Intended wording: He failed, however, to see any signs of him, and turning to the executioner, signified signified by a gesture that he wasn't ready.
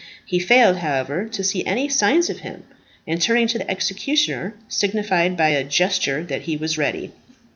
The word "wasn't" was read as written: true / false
false